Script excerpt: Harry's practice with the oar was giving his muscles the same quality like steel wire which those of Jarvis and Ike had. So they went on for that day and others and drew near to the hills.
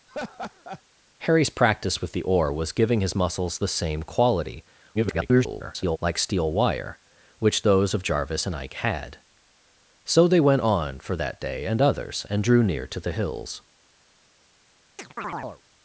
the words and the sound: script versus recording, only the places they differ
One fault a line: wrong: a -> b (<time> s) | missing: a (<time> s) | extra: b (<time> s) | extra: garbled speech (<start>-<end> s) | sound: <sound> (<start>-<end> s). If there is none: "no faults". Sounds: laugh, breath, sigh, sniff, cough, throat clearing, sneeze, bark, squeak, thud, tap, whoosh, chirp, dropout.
sound: laugh (0.1-0.8 s)
extra: garbled speech (4.9-6.0 s)
sound: chirp (15.0-15.6 s)